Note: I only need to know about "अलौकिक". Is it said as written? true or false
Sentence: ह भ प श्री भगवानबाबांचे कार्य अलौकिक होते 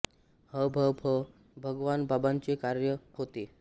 false